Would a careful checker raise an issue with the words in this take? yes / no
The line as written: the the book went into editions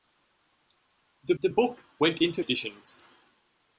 no